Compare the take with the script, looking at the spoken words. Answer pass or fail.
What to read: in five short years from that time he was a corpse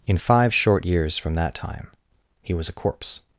pass